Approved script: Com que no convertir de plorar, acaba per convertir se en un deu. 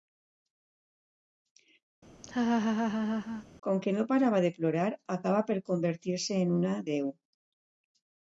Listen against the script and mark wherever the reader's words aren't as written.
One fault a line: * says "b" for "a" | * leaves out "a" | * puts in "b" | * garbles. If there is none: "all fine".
* says "parava" for "convertir"
* says "una" for "un"